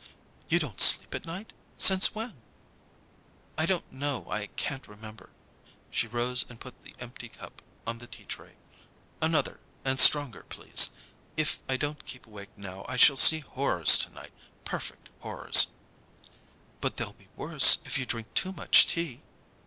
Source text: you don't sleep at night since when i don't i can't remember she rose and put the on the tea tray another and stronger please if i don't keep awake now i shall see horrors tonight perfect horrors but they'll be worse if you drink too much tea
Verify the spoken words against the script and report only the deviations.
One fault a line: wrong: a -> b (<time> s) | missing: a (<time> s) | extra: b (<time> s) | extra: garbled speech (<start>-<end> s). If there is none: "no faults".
extra: know (3.9 s)
extra: empty cup (7.0 s)